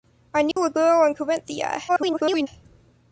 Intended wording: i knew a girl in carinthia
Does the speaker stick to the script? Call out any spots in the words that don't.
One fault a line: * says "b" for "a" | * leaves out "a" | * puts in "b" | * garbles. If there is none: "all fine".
* garbles